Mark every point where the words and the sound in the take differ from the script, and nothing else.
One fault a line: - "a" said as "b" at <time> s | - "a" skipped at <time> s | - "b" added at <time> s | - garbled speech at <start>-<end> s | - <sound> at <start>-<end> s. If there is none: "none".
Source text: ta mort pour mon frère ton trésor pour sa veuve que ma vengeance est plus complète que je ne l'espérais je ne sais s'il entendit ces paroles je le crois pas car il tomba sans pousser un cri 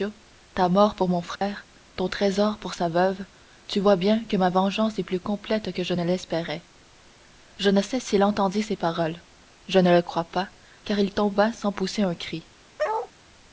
- dropout at 1.4-1.4 s
- "tu vois bien" added at 3.7 s
- "ne" added at 9.8 s
- bark at 12.8-13.1 s